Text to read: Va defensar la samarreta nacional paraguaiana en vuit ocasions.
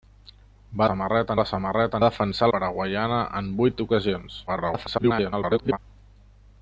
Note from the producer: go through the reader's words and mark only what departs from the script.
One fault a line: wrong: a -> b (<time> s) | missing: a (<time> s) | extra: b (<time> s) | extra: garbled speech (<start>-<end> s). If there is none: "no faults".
wrong: defensar -> samarreta (0.9 s)
wrong: nacional -> defensar (2.0 s)
extra: garbled speech (4.5-5.8 s)